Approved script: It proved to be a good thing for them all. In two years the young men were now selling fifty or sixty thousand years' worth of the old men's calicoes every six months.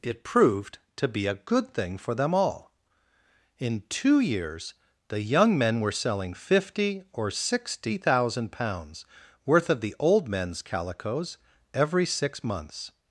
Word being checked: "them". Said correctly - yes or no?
yes